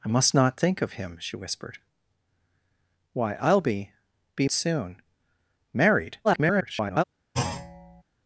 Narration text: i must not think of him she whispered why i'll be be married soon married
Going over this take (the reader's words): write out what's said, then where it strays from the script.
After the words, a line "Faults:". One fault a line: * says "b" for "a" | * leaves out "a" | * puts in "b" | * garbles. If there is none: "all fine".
i must not think of him she whispered why i'll be be soon married [garbled]
Faults:
* leaves out "married"
* garbles